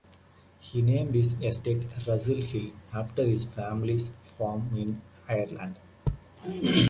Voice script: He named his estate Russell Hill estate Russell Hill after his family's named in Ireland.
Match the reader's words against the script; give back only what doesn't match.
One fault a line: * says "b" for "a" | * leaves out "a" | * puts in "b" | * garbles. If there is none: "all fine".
* leaves out "estate Russell Hill"
* says "farm" for "named"